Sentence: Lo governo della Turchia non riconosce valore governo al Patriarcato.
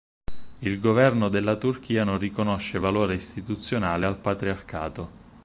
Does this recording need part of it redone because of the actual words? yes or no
yes